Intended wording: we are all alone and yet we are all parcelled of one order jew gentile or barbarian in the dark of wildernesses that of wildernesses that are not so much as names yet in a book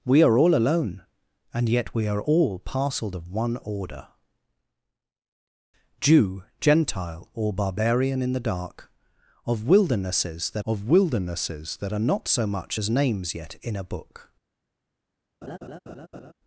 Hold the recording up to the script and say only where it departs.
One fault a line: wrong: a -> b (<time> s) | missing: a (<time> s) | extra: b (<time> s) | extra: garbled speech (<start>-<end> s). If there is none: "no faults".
no faults